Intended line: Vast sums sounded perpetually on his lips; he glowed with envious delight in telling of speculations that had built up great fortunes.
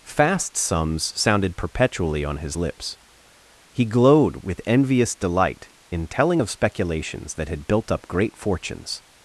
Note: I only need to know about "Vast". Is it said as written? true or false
false